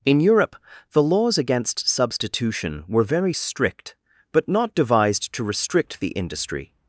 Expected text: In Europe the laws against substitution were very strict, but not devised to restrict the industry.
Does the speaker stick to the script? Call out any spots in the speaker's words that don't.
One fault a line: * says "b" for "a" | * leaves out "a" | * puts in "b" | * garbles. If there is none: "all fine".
all fine